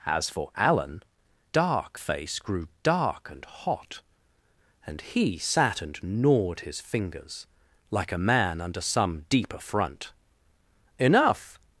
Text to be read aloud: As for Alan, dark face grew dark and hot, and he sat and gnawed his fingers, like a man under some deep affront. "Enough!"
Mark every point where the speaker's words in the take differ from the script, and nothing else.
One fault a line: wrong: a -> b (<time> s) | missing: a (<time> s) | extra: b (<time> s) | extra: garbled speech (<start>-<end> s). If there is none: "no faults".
no faults